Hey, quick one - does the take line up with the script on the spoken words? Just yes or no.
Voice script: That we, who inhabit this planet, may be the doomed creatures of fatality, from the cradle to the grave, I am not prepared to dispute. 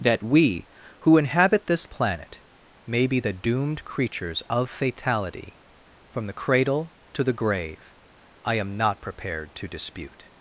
yes